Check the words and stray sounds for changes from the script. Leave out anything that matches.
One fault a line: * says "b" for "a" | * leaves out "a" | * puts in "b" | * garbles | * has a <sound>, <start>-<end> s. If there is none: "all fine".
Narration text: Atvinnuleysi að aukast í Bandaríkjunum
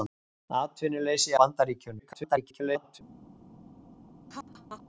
* leaves out "að aukast"
* garbles
* has a laugh, 4.3-4.8 s